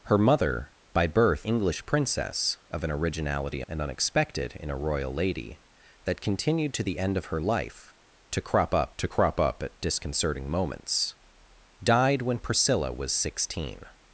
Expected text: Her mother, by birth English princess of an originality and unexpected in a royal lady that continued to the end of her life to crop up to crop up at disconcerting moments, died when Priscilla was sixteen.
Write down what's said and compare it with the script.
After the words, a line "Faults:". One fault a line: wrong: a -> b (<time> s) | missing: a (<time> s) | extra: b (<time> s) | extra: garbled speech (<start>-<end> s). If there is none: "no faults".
Her mother, by birth English princess of an originality and unexpected in a royal lady that continued to the end of her life to crop up to crop up at disconcerting moments, died when Priscilla was sixteen.
Faults:
no faults